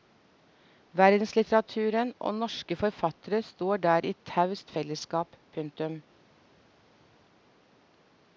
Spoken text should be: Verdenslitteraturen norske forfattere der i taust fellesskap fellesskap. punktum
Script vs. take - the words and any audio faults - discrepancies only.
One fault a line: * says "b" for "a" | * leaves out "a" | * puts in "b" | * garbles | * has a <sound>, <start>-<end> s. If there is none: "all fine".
* puts in "og"
* puts in "står"
* leaves out "fellesskap"